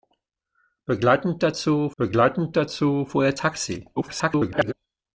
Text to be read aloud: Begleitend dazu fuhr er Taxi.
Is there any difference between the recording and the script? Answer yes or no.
yes